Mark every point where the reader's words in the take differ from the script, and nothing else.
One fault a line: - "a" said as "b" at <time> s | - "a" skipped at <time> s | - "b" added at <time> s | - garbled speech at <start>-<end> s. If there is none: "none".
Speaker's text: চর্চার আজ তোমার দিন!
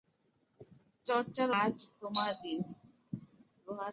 none